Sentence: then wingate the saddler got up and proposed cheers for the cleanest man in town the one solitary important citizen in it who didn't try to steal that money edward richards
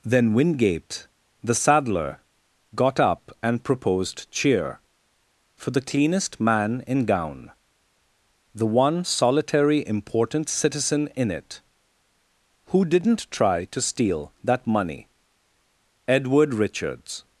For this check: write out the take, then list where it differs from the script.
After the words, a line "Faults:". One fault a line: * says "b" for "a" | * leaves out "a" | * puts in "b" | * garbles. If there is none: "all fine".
then wingate the saddler got up and proposed cheer for the cleanest man in gown the one solitary important citizen in it who didn't try to steal that money edward richards
Faults:
* says "cheer" for "cheers"
* says "gown" for "town"